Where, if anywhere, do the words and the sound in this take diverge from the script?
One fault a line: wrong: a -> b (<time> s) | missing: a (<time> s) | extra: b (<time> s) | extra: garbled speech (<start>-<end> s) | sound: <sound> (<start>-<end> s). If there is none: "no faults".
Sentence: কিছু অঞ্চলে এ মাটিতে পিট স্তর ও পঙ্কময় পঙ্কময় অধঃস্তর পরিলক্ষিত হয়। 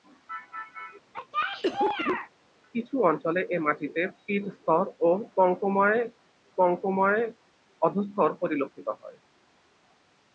sound: cough (1.1-2.3 s)